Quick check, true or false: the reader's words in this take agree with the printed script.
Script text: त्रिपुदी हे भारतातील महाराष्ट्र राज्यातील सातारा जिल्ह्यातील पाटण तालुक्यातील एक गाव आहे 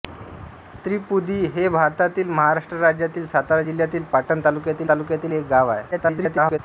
false